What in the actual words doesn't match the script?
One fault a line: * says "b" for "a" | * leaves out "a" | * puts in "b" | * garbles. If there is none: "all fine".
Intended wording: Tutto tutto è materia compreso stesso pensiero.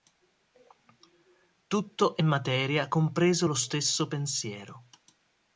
* leaves out "tutto"
* puts in "lo"